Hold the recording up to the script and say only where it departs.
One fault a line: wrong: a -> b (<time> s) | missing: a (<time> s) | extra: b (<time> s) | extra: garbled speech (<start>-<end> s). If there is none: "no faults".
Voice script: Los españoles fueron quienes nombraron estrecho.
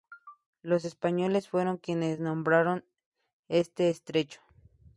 extra: este (3.5 s)